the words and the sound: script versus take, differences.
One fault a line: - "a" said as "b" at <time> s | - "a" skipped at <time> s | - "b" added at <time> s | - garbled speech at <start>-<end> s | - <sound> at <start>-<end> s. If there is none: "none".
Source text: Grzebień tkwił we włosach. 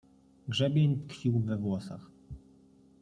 none